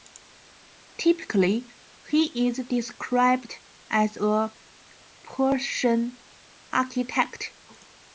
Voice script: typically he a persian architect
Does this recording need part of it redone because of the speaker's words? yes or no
yes